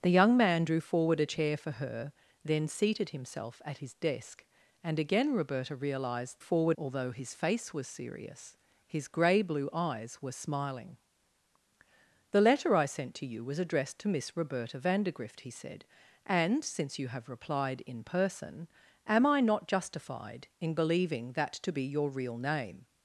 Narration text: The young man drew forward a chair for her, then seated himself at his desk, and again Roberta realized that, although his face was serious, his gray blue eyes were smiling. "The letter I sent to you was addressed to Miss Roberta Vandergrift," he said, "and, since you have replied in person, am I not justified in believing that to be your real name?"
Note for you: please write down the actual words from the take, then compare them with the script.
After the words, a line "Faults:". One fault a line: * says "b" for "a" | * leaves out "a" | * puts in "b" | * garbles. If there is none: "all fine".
The young man drew forward a chair for her, then seated himself at his desk, and again Roberta realized forward, although his face was serious, his gray blue eyes were smiling. "The letter I sent to you was addressed to Miss Roberta Vandergrift," he said, "and, since you have replied in person, am I not justified in believing that to be your real name?"
Faults:
* says "forward" for "that"